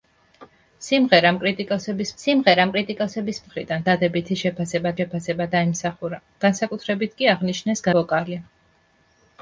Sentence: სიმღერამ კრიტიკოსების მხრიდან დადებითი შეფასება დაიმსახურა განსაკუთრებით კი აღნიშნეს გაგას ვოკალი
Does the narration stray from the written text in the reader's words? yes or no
yes